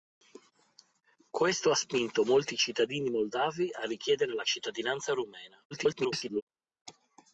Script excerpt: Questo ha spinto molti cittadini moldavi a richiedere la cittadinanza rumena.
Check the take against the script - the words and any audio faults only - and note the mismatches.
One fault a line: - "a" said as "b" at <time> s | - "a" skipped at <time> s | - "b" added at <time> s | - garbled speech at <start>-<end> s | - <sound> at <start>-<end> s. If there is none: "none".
- garbled speech at 5.7-6.4 s